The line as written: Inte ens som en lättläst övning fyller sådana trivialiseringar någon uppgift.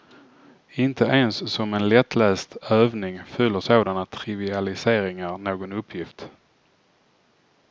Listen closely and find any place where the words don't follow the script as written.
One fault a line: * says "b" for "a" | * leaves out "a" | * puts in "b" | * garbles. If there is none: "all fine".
all fine